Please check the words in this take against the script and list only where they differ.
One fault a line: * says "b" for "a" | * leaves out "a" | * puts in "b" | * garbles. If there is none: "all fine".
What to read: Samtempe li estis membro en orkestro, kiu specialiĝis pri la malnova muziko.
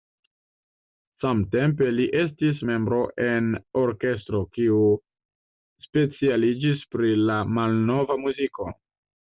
all fine